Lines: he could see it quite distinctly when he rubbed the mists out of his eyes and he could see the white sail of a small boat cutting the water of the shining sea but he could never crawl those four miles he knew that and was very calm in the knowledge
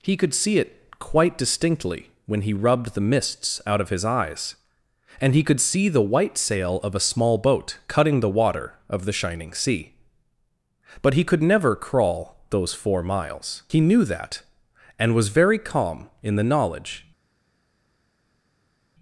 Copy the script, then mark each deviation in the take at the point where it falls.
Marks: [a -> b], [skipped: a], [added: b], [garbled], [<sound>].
he could see it quite distinctly when he rubbed the mists out of his eyes and he could see the white sail of a small boat cutting the water of the shining sea but he could never crawl those four miles he knew that and was very calm in the knowledge